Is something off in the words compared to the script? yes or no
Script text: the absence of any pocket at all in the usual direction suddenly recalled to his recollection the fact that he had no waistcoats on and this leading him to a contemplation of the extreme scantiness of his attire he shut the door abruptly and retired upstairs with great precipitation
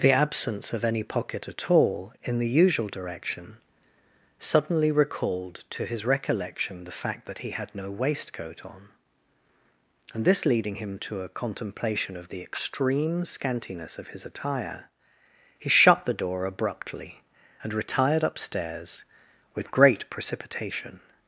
yes